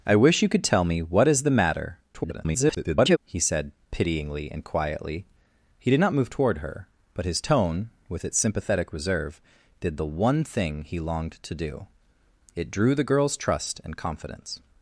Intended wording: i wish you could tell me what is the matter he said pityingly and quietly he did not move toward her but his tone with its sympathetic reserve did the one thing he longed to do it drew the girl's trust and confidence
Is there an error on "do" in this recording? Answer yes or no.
no